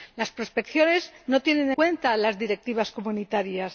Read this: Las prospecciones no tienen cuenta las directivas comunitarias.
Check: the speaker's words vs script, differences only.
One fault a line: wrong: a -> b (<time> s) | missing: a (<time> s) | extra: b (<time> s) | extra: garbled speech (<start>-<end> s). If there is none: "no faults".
no faults